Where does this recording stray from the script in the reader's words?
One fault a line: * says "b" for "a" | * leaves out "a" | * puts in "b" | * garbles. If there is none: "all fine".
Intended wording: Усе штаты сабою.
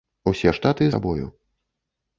all fine